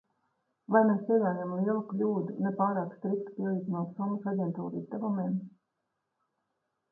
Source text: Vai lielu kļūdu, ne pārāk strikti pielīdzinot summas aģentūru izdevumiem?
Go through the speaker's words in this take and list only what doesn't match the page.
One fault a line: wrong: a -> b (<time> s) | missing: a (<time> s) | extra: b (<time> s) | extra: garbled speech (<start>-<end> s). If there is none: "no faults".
extra: mēs pieļaujam (0.8 s)